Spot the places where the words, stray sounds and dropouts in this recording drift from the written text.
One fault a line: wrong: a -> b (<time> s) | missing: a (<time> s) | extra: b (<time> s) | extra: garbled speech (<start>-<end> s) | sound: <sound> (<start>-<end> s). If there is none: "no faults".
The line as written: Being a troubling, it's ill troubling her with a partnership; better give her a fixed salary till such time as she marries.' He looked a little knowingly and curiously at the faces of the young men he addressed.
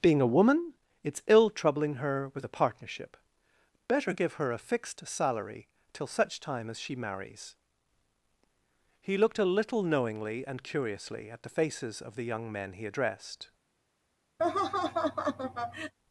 wrong: troubling -> woman (0.3 s)
sound: laugh (14.4-15.9 s)